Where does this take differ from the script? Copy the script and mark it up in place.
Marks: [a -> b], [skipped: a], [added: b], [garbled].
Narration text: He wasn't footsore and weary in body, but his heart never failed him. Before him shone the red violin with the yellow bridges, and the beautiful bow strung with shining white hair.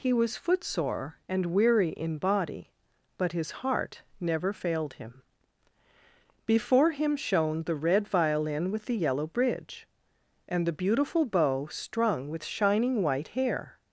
He [wasn't -> was] footsore and weary in body, but his heart never failed him. Before him shone the red violin with the yellow [bridges, -> bridge] and the beautiful bow strung with shining white hair.